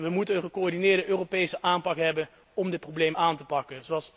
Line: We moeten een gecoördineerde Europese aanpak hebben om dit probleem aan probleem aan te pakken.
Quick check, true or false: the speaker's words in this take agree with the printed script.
false